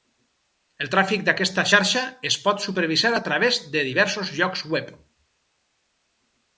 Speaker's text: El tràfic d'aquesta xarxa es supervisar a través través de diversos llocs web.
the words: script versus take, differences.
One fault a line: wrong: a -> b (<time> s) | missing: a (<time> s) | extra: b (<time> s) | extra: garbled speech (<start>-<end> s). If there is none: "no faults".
extra: pot (2.5 s)
missing: través (3.6 s)